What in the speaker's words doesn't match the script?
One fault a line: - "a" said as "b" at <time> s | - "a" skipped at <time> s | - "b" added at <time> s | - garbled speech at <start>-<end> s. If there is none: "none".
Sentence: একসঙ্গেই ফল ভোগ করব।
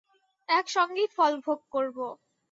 none